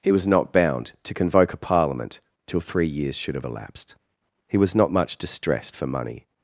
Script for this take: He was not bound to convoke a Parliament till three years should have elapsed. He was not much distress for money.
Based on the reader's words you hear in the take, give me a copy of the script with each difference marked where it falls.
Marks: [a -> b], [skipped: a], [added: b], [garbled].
He was not bound to convoke a Parliament till three years should have elapsed. He was not much [distress -> distressed] for money.